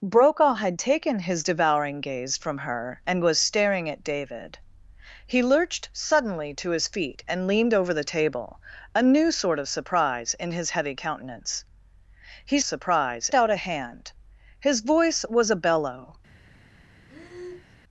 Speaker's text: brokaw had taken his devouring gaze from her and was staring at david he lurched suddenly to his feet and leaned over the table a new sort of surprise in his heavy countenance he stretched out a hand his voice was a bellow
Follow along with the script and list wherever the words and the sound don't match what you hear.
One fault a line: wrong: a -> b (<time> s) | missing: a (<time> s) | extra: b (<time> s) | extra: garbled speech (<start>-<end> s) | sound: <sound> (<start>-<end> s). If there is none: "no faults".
wrong: stretched -> surprise (12.6 s)
sound: breath (17.1-17.8 s)